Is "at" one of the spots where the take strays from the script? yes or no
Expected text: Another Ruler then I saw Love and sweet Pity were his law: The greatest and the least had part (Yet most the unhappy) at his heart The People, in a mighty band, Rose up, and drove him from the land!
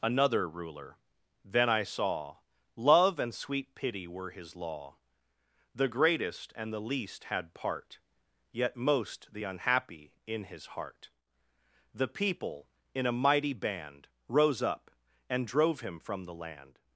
yes